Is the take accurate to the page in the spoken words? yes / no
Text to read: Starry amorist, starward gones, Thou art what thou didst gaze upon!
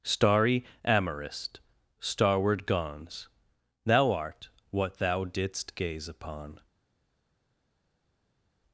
yes